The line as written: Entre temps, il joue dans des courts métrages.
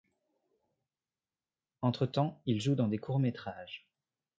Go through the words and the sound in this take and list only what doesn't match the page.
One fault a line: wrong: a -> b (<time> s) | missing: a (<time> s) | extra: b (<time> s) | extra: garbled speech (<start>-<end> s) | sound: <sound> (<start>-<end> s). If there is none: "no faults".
no faults